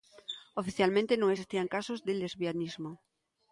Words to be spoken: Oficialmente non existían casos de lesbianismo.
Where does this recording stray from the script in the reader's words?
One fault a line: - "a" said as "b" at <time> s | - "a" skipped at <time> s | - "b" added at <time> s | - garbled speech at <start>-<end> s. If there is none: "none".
none